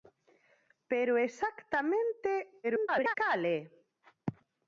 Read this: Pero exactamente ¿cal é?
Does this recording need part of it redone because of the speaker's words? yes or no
yes